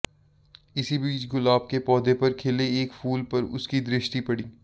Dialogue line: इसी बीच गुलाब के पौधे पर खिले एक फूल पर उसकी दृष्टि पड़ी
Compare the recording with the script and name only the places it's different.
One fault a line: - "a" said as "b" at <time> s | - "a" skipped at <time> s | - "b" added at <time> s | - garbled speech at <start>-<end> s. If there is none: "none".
none